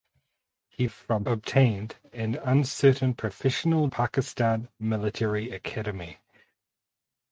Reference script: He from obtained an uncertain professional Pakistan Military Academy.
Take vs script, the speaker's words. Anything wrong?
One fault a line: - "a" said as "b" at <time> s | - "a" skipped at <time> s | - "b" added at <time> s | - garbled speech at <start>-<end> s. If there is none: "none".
none